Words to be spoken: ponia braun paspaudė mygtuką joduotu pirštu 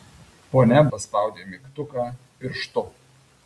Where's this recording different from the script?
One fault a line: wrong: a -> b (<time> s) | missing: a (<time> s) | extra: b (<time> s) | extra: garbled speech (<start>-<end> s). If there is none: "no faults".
missing: braun (0.8 s)
missing: joduotu (2.1 s)